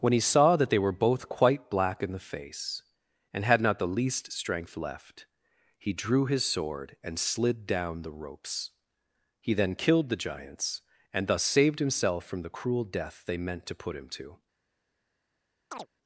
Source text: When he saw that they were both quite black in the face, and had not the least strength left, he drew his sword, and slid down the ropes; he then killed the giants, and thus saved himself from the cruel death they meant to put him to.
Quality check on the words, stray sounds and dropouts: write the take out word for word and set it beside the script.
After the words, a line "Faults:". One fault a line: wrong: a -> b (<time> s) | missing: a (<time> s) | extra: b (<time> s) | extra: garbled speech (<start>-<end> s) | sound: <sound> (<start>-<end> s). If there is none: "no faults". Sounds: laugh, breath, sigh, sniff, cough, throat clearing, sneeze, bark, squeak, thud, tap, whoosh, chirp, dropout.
When he saw that they were both quite black in the face, and had not the least strength left, he drew his sword, and slid down the ropes; he then killed the giants, and thus saved himself from the cruel death they meant to put him to.
Faults:
sound: chirp (15.7-15.9 s)